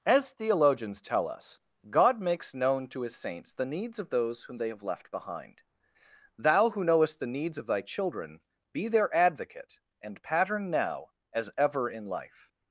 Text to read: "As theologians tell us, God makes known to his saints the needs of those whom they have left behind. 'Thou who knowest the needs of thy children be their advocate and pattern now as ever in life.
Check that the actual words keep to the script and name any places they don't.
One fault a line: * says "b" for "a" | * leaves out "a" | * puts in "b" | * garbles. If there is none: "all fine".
all fine